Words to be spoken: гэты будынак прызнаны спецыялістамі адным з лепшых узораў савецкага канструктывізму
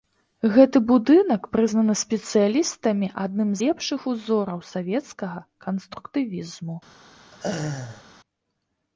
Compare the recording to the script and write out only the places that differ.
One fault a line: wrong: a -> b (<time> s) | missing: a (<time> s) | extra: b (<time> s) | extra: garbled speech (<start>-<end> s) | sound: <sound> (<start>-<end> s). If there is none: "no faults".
missing: з (3.5 s)
sound: laugh (7.3-8.0 s)